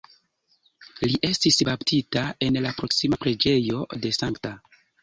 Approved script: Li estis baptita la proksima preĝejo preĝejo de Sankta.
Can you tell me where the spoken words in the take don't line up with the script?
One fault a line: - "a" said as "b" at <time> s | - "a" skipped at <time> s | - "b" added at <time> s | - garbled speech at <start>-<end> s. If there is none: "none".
- "en" added at 2.5 s
- "preĝejo" skipped at 3.9 s